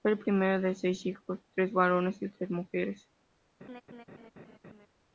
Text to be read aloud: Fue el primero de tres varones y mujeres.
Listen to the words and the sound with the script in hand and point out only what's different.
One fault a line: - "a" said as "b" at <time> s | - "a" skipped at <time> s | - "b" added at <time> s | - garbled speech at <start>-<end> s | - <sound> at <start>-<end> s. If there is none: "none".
- "seis hijos" added at 0.8 s
- "tres" added at 2.3 s
- laugh at 3.6-4.9 s